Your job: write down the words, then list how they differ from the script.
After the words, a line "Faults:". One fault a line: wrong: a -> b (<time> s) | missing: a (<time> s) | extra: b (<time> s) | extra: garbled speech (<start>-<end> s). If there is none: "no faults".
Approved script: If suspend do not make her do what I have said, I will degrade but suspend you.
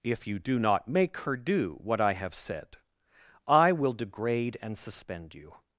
If you do not make her do what I have said, I will degrade and suspend you.
Faults:
wrong: suspend -> you (0.2 s)
wrong: but -> and (4.6 s)